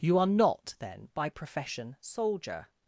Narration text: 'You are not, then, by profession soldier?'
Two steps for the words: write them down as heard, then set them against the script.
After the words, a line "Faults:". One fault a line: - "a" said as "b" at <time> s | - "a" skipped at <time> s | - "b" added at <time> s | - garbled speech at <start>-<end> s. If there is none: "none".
'You are not, then, by profession soldier?'
Faults:
none